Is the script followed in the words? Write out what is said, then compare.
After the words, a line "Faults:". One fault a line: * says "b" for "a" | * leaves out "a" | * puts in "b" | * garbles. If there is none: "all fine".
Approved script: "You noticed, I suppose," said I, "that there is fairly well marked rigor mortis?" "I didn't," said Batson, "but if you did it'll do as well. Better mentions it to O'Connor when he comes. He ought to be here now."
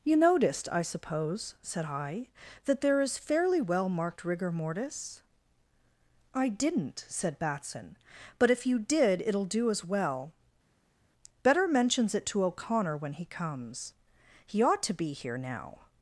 "You noticed, I suppose," said I, "that there is fairly well marked rigor mortis?" "I didn't," said Batson, "but if you did it'll do as well. Better mentions it to O'Connor when he comes. He ought to be here now."
Faults:
all fine